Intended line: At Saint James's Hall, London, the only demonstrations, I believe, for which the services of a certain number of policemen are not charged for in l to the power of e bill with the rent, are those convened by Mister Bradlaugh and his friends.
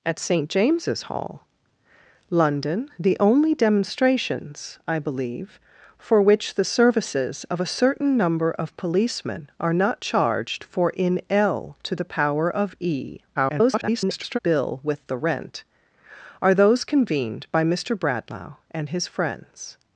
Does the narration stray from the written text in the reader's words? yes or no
yes